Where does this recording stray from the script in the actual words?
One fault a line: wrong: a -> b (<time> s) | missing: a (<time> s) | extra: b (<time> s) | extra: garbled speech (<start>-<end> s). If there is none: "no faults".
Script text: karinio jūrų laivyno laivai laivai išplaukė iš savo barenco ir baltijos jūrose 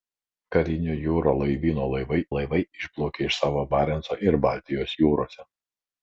no faults